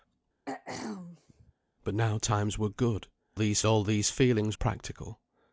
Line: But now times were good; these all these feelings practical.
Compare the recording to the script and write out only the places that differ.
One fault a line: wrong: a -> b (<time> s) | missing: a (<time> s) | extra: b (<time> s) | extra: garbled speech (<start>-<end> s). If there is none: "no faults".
no faults